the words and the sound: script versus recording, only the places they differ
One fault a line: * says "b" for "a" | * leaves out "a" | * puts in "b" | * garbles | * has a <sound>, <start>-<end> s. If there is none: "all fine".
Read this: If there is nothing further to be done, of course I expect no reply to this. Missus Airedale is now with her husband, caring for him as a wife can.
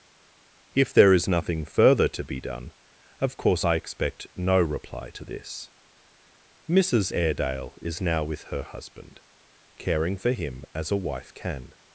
all fine